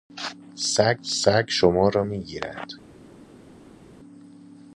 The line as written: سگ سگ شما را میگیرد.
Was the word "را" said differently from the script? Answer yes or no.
no